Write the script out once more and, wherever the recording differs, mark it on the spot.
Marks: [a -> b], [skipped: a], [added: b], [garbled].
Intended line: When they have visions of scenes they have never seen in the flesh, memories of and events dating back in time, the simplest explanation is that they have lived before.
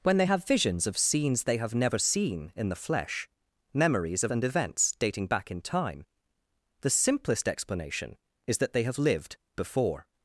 When they have visions of scenes they have never seen in the flesh, memories of and events dating back in time, the simplest explanation is that they have lived before.